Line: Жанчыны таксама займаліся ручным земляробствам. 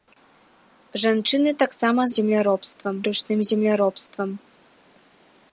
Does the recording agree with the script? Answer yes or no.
no